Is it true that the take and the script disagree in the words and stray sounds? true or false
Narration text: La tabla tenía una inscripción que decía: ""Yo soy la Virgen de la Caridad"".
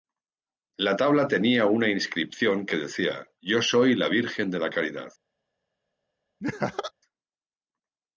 true